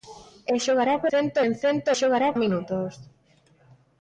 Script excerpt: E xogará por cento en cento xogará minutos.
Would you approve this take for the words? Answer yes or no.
yes